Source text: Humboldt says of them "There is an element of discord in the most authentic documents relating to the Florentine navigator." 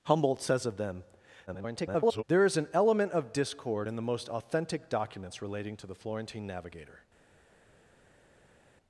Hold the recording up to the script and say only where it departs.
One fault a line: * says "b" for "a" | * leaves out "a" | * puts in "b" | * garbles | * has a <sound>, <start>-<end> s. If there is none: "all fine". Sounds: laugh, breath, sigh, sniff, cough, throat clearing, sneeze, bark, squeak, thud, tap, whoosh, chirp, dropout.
* garbles